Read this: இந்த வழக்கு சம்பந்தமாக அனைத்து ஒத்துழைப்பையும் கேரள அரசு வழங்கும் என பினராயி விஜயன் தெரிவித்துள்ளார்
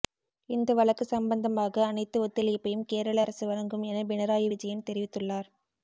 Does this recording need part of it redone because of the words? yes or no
no